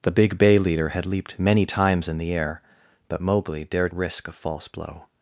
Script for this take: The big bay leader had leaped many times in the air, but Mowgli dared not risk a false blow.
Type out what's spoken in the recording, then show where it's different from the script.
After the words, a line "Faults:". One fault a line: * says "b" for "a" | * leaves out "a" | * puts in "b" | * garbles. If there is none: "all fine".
The big bay leader had leaped many times in the air, but Mowgli dared risk a false blow.
Faults:
* leaves out "not"